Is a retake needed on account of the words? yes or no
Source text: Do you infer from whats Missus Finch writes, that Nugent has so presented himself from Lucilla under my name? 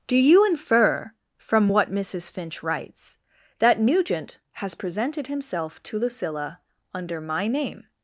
yes